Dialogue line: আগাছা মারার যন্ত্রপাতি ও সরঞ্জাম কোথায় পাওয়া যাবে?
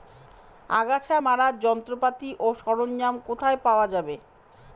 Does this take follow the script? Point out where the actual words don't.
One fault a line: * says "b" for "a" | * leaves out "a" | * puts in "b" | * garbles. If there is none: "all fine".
all fine